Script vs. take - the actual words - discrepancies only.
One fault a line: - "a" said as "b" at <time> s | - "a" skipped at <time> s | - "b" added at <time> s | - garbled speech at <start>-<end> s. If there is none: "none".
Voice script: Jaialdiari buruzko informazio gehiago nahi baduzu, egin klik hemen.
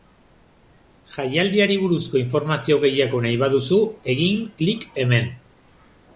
none